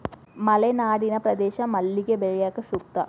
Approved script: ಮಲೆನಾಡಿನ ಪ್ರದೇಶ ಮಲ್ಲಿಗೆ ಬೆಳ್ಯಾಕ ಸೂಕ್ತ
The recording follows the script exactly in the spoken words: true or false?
true